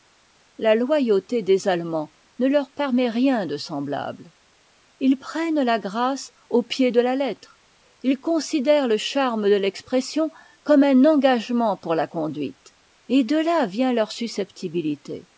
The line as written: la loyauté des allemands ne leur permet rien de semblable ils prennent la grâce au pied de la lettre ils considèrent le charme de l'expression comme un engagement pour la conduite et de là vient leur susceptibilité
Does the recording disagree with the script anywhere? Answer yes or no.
no